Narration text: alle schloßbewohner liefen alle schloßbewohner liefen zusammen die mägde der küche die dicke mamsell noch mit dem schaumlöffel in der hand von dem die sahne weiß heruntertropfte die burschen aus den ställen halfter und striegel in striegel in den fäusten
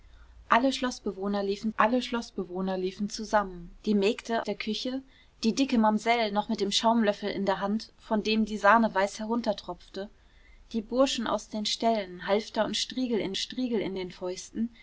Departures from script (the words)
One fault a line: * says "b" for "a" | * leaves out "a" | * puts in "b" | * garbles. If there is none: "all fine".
all fine